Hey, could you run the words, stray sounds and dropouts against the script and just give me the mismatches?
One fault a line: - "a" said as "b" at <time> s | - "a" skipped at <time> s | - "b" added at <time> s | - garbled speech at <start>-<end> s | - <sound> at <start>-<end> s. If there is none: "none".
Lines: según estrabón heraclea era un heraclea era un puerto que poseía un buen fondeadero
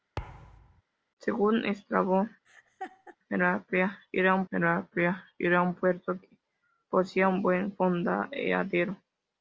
- thud at 0.2-0.8 s
- laugh at 2.4-3.2 s